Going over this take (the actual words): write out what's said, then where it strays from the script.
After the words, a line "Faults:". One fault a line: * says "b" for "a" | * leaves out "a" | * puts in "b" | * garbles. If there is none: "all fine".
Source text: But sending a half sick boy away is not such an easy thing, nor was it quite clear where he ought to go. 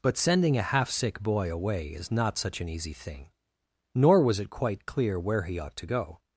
But sending a half sick boy away is not such an easy thing, nor was it quite clear where he ought to go.
Faults:
all fine